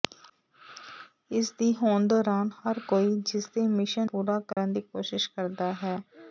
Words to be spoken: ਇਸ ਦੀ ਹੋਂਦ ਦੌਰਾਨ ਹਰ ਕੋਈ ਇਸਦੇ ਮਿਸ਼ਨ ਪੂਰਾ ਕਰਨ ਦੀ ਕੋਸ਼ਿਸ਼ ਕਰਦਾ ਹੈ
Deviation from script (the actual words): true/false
false